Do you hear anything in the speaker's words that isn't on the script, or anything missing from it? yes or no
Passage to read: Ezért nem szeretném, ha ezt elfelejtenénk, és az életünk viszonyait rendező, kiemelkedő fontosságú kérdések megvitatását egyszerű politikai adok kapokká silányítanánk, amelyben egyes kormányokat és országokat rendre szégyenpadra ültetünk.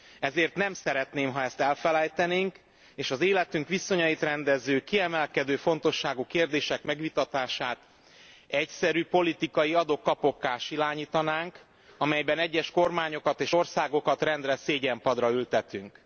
no